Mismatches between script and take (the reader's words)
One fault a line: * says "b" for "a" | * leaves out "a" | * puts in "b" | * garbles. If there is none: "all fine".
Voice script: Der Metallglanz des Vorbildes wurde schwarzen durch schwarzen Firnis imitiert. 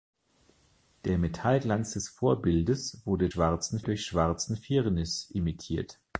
all fine